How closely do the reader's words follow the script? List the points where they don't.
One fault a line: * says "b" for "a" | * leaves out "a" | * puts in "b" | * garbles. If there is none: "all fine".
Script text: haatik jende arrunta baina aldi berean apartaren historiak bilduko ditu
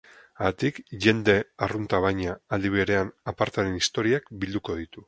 all fine